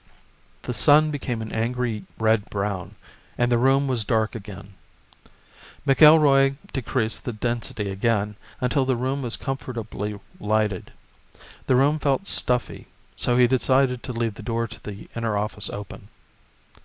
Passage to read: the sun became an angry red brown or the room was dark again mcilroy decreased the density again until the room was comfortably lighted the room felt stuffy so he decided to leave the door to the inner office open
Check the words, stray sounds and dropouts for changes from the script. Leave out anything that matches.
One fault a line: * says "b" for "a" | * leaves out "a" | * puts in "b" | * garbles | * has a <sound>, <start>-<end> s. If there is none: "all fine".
* says "and" for "or"